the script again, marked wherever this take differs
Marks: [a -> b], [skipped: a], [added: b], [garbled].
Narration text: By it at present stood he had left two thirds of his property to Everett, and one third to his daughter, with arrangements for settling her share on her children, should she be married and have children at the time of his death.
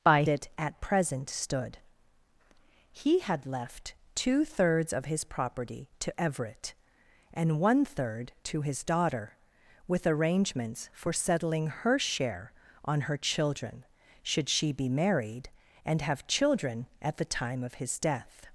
By it at present stood he had left two thirds of his property to Everett, and one third to his daughter, with arrangements for settling her share on her children, should she be married and have children at the time of his death.